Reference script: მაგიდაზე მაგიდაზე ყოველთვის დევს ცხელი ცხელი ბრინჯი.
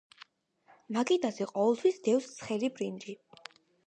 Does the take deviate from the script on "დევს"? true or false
false